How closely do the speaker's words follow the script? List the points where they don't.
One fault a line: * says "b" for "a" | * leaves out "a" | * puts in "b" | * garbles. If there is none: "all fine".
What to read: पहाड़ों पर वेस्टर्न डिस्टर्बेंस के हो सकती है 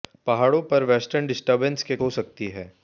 all fine